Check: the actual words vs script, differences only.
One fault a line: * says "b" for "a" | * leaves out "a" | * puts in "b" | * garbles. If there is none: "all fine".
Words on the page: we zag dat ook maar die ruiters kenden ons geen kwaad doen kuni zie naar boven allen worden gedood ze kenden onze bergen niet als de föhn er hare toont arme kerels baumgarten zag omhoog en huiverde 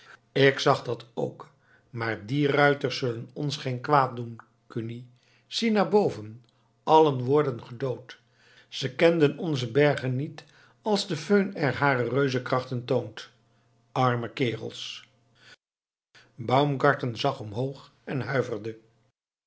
* says "ik" for "we"
* says "zullen" for "kenden"
* puts in "reuzenkrachten"